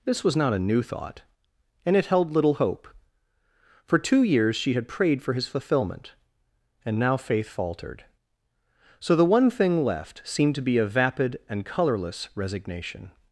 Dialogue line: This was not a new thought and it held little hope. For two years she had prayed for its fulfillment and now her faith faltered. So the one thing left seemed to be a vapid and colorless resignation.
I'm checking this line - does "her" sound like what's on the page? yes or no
no